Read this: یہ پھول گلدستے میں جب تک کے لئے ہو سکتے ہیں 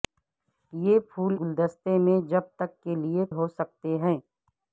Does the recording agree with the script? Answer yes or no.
yes